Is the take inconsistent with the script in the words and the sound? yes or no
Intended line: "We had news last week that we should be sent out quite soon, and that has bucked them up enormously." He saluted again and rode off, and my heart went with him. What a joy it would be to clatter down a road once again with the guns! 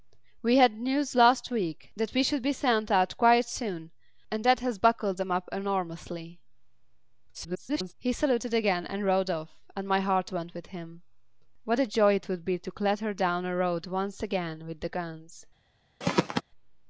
yes